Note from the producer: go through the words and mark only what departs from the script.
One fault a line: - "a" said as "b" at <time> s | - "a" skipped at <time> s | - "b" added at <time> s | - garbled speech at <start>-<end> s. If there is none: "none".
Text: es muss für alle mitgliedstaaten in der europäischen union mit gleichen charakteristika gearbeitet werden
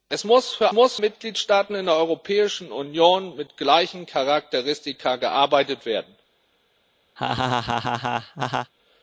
- "alle" said as "muss" at 0.7 s